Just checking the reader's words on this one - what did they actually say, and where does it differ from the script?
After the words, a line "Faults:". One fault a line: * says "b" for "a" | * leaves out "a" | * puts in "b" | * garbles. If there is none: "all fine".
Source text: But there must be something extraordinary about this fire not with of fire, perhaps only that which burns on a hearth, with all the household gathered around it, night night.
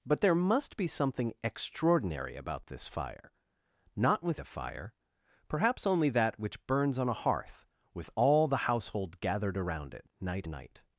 But there must be something extraordinary about this fire not with of fire, perhaps only that which burns on a hearth, with all the household gathered around it, night night.
Faults:
all fine